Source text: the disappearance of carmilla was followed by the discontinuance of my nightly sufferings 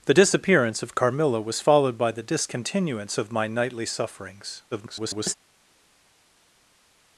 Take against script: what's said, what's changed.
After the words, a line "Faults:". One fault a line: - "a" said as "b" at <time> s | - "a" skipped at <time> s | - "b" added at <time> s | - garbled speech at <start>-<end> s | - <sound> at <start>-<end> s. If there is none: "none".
the disappearance of carmilla was followed by the discontinuance of my nightly sufferings [garbled]
Faults:
- garbled speech at 4.7-5.3 s